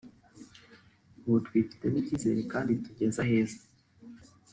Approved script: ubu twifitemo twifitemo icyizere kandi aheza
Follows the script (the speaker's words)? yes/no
no